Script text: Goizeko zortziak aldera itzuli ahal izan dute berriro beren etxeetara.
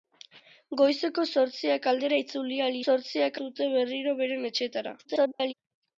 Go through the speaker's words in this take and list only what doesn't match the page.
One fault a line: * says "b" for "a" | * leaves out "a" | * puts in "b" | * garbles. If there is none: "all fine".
* says "zortziak" for "izan"
* garbles